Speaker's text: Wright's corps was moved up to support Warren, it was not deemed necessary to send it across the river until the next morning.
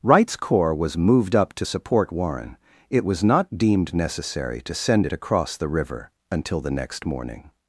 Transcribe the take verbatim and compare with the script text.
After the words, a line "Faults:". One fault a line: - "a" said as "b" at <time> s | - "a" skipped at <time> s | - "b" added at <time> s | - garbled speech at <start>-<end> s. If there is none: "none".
Wright's corps was moved up to support Warren, it was not deemed necessary to send it across the river until the next morning.
Faults:
none